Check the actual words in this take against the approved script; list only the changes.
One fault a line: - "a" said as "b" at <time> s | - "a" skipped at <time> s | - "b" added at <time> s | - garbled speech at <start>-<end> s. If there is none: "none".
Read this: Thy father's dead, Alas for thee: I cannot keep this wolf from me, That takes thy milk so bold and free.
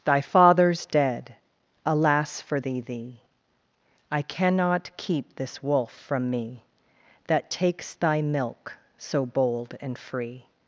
- "thee" added at 2.8 s